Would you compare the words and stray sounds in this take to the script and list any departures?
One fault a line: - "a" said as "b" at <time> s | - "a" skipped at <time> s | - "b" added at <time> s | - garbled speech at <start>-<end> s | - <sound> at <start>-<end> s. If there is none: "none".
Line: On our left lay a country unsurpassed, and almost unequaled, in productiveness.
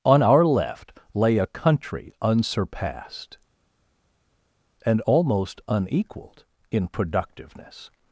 none